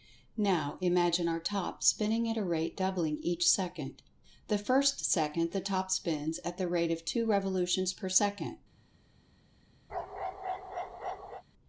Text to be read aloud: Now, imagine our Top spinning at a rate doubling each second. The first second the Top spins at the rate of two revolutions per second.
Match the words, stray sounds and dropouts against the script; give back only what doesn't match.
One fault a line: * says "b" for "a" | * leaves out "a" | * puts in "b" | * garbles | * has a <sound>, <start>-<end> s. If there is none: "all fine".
* has a bark, 9.9-11.4 s